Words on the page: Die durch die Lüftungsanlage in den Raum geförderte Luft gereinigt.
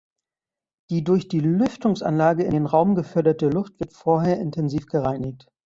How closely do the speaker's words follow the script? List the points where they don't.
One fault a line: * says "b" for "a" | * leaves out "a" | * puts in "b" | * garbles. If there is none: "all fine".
* puts in "wird vorher intensiv"